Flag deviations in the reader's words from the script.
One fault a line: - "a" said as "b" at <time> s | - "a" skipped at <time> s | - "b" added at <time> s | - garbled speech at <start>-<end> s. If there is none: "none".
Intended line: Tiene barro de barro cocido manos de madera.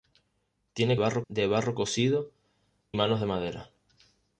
none